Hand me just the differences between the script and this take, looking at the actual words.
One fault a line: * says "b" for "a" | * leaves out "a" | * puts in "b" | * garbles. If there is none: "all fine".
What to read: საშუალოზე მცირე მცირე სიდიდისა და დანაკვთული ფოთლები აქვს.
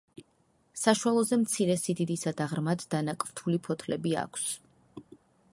* leaves out "მცირე"
* puts in "ღრმად"